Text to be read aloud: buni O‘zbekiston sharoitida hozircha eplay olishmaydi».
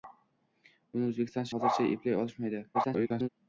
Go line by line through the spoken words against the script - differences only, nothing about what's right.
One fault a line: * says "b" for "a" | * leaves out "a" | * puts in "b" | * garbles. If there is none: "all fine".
* leaves out "sharoitida"
* garbles